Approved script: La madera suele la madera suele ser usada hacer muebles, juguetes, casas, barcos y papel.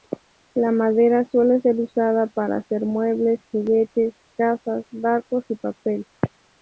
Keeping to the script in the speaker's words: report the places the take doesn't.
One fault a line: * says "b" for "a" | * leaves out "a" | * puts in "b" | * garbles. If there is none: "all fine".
* leaves out "la madera suele"
* puts in "para"